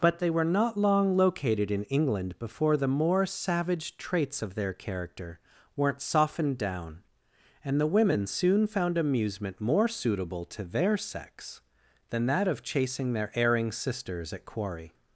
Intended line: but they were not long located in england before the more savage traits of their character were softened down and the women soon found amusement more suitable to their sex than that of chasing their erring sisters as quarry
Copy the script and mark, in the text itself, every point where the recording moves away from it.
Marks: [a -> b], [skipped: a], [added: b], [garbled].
but they were not long located in england before the more savage traits of their character [were -> weren't] softened down and the women soon found amusement more suitable to their sex than that of chasing their erring sisters [as -> at] quarry